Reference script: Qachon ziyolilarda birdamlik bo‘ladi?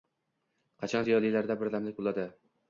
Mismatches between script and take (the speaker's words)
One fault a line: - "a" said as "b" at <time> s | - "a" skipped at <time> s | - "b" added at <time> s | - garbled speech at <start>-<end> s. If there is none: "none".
none